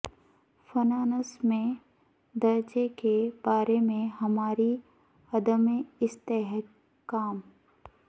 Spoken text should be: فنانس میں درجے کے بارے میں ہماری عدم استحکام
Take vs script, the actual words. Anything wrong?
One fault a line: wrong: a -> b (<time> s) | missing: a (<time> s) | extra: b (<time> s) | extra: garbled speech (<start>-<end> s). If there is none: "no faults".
no faults